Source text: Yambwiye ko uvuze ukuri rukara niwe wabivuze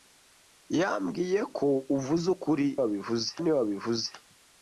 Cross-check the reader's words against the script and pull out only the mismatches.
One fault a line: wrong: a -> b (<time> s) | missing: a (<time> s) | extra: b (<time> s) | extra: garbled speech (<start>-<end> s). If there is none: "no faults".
wrong: rukara -> wabivuze (2.8 s)